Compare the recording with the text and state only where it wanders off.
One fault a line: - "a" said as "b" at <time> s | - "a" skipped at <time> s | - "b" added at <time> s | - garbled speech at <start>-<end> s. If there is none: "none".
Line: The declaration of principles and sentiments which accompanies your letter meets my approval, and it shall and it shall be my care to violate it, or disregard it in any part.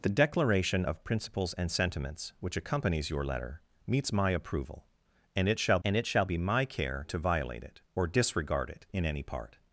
none